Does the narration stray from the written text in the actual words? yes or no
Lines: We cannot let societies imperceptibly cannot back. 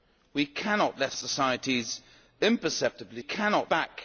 no